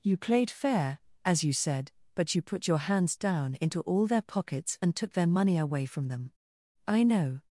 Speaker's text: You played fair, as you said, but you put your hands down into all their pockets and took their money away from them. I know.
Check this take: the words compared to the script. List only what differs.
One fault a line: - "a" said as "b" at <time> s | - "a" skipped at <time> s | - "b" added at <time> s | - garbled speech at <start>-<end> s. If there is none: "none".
none